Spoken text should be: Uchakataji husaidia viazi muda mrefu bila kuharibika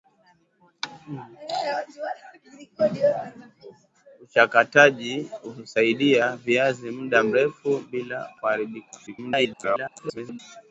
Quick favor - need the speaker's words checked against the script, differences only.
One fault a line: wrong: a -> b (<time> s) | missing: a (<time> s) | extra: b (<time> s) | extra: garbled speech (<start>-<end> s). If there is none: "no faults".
extra: garbled speech (9.1-10.4 s)